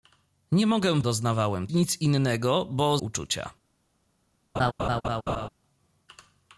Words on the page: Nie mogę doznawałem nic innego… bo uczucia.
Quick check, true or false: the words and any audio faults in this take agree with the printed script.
false